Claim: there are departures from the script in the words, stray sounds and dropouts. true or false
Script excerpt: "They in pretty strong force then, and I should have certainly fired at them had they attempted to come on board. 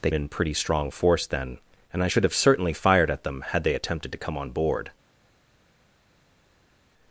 false